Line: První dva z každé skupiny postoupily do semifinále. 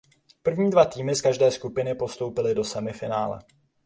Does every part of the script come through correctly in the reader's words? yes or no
no